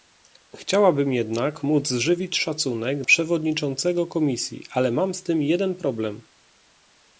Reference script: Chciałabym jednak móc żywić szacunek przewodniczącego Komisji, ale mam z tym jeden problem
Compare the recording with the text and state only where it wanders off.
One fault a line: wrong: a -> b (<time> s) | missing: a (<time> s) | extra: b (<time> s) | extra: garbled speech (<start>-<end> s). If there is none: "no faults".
no faults